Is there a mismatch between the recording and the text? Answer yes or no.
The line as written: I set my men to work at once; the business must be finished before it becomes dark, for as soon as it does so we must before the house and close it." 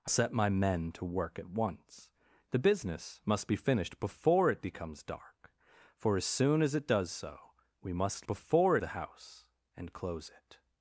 no